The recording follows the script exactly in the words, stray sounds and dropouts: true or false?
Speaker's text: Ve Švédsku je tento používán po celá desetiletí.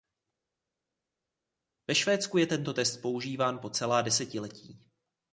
false